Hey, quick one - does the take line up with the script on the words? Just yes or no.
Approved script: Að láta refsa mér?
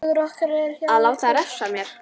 yes